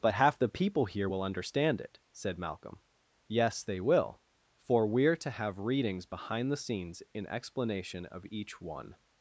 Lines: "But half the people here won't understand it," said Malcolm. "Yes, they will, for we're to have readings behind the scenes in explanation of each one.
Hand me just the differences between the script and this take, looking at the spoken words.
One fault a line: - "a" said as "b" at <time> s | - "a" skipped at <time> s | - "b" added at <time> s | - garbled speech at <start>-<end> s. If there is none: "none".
- "won't" said as "will" at 1.0 s